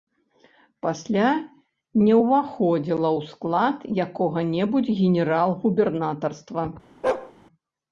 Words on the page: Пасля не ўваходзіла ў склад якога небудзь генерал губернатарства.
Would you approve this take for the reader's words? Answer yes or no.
yes